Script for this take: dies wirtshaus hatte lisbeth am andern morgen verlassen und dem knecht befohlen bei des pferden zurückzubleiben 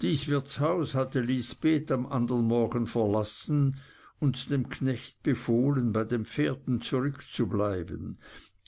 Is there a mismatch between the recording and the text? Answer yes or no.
yes